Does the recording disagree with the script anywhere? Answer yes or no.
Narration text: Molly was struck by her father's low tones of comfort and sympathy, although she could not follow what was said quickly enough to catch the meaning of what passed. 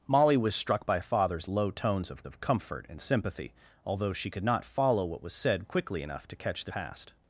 yes